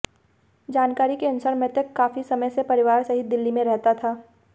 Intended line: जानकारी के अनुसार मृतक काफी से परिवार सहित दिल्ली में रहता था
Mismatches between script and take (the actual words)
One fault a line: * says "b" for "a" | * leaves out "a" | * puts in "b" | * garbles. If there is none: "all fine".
* puts in "समय"